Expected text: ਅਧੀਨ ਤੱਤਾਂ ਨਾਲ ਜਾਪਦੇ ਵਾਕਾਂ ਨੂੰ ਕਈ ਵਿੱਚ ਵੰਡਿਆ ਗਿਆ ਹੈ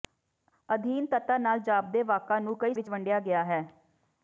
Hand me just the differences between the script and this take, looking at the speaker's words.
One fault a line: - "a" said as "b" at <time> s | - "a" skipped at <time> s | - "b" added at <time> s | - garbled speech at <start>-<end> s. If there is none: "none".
none